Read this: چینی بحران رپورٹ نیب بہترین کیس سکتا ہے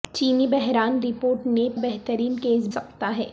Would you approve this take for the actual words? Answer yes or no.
yes